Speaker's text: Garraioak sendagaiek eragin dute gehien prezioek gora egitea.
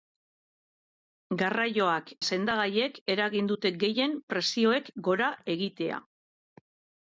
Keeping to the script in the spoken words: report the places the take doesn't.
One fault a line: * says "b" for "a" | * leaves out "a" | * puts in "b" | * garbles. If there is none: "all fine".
all fine